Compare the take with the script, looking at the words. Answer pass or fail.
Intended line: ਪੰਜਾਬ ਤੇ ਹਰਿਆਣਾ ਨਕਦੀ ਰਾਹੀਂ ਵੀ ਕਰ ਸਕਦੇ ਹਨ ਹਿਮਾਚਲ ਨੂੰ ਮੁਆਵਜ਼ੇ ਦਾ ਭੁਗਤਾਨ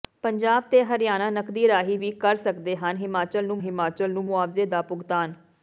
fail